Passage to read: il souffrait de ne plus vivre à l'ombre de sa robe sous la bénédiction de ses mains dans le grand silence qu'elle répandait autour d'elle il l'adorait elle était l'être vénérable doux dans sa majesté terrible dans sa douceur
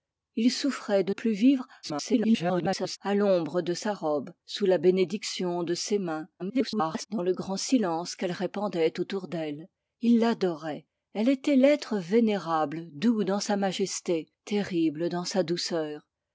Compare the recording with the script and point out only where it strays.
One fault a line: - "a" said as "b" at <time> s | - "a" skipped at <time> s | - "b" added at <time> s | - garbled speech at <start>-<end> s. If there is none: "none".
- "ne" skipped at 1.1 s
- garbled speech at 1.8-3.0 s
- garbled speech at 6.4-7.1 s